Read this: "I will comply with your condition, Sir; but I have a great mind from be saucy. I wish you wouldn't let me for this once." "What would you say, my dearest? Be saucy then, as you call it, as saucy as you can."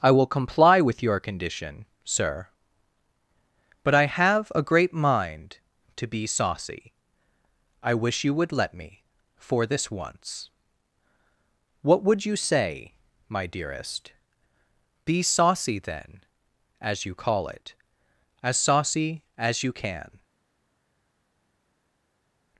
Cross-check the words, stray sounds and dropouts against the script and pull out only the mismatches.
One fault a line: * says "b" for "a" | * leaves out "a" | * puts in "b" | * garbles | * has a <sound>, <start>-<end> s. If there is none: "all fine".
* says "to" for "from"
* says "would" for "wouldn't"